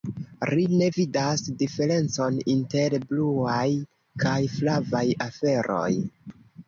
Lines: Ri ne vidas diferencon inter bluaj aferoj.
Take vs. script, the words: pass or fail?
fail